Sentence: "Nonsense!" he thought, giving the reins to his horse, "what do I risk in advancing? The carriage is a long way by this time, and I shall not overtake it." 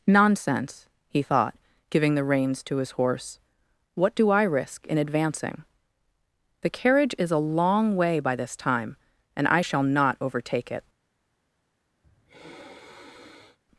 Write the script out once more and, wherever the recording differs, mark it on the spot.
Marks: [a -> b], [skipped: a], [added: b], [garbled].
"Nonsense!" he thought, giving the reins to his horse, "what do I risk in advancing? The carriage is a long way by this time, and I shall not overtake it."